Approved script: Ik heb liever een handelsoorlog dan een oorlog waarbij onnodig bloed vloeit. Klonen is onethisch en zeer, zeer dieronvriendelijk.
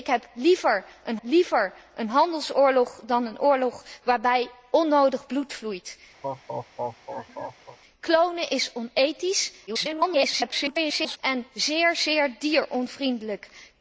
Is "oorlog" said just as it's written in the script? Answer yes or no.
yes